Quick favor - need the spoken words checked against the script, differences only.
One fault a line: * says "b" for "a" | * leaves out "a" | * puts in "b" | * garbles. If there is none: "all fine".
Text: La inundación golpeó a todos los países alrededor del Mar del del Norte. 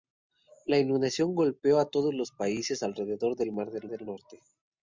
all fine